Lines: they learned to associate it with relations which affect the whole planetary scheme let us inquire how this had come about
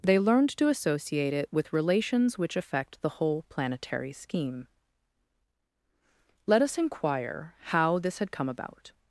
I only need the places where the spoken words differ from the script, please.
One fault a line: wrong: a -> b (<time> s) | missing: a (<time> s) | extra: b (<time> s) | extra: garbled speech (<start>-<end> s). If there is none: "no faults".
no faults